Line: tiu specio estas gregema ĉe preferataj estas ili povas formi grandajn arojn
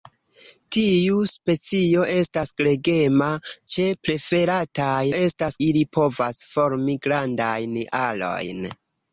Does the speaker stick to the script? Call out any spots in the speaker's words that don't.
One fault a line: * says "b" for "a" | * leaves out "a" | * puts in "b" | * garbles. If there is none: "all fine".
all fine